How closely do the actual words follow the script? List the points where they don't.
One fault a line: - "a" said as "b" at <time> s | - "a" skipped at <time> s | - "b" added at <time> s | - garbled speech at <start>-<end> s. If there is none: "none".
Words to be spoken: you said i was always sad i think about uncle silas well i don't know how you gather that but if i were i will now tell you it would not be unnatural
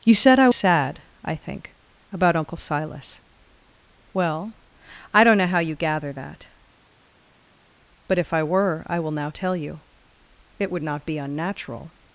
- "was always" skipped at 0.5 s